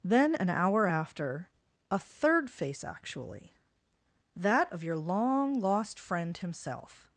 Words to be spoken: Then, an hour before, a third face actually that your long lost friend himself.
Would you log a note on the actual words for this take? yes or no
yes